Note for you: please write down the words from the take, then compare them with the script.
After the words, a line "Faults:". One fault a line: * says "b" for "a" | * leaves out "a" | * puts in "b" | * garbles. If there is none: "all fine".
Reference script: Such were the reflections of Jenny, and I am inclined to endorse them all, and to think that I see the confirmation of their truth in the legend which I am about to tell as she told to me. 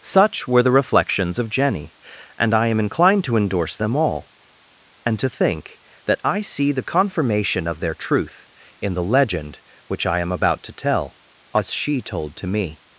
Such were the reflections of Jenny, and I am inclined to endorse them all, and to think that I see the confirmation of their truth in the legend which I am about to tell as she told to me.
Faults:
all fine